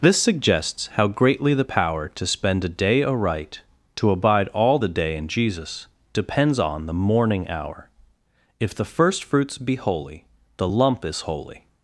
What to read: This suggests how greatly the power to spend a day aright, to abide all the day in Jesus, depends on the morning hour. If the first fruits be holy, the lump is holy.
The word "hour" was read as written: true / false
true